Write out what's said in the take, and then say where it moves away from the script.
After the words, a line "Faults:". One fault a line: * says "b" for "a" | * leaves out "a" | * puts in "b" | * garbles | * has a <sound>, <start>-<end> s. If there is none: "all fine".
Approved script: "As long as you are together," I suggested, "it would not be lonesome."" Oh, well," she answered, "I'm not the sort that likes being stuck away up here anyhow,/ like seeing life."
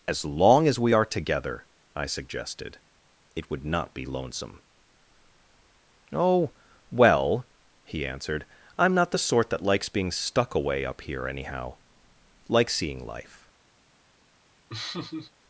"As long as we are together," I suggested, "it would not be lonesome."" Oh, well," he answered, "I'm not the sort that likes being stuck away up here anyhow,/ like seeing life."
Faults:
* says "we" for "you"
* says "he" for "she"
* has a laugh, 14.7-15.3 s